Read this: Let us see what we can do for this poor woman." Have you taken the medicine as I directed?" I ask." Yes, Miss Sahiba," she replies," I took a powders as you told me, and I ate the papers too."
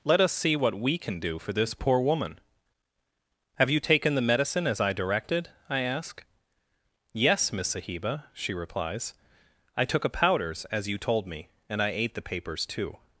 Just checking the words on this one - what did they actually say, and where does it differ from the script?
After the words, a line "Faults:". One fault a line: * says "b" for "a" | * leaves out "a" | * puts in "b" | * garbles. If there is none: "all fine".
Let us see what we can do for this poor woman." Have you taken the medicine as I directed?" I ask." Yes, Miss Sahiba," she replies," I took a powders as you told me, and I ate the papers too."
Faults:
all fine